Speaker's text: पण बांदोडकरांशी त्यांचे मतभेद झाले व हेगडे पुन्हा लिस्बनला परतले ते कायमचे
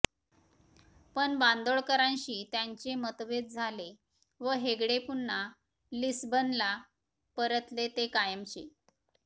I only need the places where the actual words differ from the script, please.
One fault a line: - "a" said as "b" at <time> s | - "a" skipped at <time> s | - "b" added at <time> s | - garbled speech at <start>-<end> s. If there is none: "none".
none